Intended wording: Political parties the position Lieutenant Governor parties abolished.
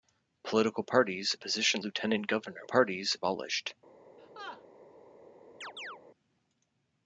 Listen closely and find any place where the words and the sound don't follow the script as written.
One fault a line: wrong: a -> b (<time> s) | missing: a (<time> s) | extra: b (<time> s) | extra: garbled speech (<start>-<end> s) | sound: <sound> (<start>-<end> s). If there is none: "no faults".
sound: laugh (4.2-4.6 s)
sound: chirp (5.6-6.0 s)